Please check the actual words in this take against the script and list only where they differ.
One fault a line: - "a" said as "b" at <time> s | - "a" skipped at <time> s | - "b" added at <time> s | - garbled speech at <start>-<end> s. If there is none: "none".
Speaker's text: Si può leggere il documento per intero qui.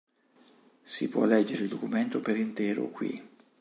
none